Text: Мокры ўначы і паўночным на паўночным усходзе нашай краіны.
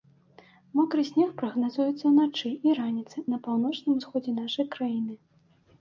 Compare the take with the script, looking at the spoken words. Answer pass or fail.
fail